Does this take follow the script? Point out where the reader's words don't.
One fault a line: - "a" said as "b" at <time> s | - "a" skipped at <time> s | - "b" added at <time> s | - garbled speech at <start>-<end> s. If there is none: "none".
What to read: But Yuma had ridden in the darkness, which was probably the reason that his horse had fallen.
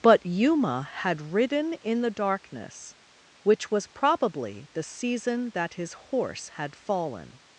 - "reason" said as "season" at 4.8 s